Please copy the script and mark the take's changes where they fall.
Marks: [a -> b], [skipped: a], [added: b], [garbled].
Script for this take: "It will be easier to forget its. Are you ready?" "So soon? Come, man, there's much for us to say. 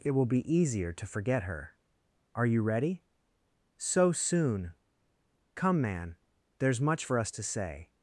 "It will be easier to forget [its. -> her] Are you ready?" "So soon? Come, man, there's much for us to say.